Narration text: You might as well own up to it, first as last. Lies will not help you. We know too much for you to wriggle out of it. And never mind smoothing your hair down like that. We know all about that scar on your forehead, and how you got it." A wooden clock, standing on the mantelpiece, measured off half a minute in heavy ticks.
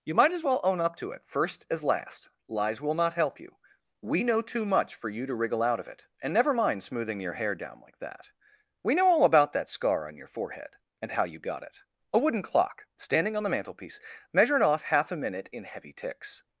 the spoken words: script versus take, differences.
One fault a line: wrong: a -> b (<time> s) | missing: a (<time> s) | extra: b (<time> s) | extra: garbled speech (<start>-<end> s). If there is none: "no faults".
no faults